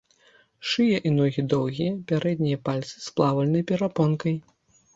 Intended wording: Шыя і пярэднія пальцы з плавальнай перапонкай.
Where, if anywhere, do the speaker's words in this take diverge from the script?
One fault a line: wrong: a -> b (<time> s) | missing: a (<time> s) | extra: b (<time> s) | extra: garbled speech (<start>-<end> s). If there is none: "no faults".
extra: ногі доўгія (1.2 s)